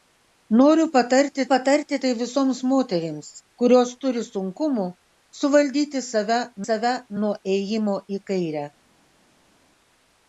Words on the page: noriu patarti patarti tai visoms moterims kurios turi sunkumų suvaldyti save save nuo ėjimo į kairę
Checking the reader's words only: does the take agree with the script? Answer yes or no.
yes